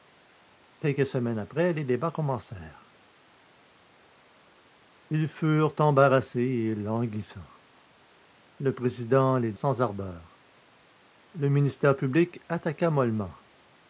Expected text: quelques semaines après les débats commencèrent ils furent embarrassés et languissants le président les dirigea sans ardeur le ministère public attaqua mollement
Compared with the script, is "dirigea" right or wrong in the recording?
wrong